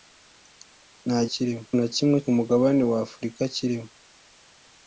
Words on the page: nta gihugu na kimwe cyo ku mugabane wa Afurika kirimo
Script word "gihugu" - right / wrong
wrong